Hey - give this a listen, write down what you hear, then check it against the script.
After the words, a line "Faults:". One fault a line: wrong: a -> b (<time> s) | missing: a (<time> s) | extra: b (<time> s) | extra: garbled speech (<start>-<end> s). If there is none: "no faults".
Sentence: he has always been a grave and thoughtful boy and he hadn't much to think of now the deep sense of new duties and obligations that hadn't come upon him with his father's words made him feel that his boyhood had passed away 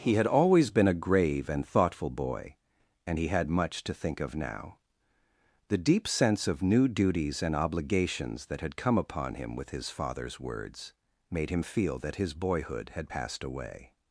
he had always been a grave and thoughtful boy and he had much to think of now the deep sense of new duties and obligations that had come upon him with his father's words made him feel that his boyhood had passed away
Faults:
wrong: has -> had (0.1 s)
wrong: hadn't -> had (3.3 s)
wrong: hadn't -> had (8.6 s)